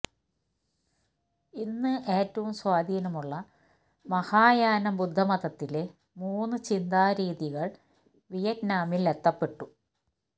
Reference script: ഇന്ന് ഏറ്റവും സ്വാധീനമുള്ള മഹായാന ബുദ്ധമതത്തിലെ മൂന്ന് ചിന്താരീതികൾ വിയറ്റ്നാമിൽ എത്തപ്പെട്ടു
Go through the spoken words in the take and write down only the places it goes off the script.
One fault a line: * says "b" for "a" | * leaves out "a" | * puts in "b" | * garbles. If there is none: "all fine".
all fine